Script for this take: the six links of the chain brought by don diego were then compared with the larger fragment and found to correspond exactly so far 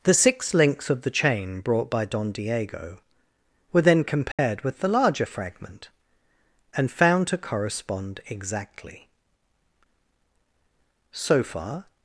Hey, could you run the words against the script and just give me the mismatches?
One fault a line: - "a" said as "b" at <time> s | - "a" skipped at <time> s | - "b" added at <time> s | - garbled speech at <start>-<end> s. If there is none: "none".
none